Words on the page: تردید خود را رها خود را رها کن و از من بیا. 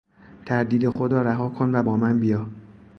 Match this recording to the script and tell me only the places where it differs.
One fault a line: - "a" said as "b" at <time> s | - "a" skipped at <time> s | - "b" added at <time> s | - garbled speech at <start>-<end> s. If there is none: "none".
- "خود را رها" skipped at 1.5 s
- "از" said as "با" at 1.8 s